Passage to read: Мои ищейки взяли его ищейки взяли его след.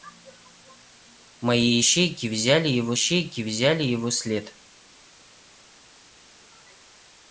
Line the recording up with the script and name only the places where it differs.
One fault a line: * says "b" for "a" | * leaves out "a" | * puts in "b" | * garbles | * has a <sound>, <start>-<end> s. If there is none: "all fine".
all fine